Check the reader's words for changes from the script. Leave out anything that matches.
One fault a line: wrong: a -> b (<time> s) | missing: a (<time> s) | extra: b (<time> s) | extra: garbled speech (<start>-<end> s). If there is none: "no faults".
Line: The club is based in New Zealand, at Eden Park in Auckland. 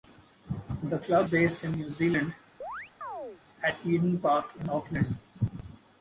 missing: is (1.3 s)